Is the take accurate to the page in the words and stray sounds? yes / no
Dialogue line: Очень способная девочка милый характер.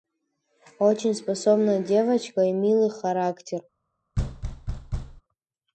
no